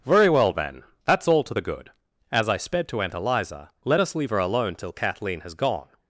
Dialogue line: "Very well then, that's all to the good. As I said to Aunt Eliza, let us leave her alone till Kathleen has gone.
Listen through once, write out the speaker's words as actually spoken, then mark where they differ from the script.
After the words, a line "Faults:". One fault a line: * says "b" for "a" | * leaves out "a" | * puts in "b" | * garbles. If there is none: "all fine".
"Very well then, that's all to the good. As I sped to Aunt Eliza, let us leave her alone till Kathleen has gone.
Faults:
* says "sped" for "said"